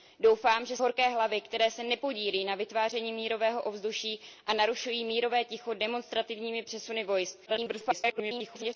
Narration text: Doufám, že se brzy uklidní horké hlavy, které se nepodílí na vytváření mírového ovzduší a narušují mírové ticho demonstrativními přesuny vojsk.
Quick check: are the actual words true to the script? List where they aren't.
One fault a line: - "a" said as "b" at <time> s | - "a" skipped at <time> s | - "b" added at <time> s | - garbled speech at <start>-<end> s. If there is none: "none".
- "se brzy uklidní" skipped at 0.8 s
- garbled speech at 7.5-8.8 s